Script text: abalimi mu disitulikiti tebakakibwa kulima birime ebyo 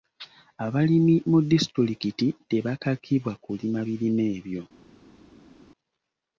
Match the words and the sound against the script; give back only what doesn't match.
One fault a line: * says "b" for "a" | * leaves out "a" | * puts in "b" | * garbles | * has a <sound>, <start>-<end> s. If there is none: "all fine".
all fine